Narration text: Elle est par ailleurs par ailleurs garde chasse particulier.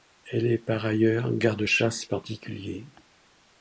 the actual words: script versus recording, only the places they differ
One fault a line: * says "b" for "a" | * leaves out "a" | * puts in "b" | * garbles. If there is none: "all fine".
* leaves out "par ailleurs"